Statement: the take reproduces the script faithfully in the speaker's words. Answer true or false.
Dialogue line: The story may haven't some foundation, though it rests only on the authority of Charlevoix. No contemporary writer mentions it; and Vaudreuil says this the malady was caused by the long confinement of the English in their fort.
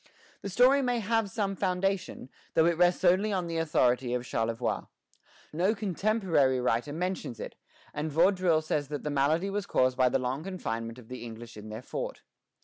false